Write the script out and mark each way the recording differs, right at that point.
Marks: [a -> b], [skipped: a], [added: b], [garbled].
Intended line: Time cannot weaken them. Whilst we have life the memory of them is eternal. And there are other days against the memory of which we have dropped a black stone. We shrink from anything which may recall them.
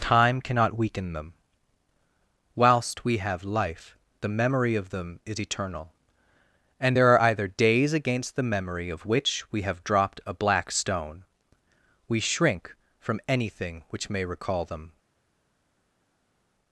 Time cannot weaken them. Whilst we have life the memory of them is eternal. And there are [other -> either] days against the memory of which we have dropped a black stone. We shrink from anything which may recall them.